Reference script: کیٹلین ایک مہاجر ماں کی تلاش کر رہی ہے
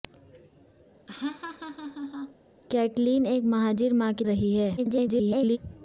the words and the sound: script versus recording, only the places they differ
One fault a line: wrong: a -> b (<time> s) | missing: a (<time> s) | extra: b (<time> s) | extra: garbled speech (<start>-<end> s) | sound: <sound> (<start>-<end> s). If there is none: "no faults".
sound: laugh (1.1-2.4 s)
missing: تلاش کر (4.2 s)
extra: garbled speech (4.8-5.6 s)